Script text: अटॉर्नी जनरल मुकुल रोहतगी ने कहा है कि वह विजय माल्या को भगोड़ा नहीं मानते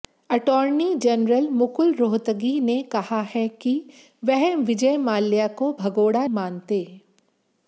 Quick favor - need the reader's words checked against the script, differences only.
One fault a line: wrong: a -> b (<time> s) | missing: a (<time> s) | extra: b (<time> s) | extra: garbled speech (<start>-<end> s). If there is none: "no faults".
missing: नहीं (6.3 s)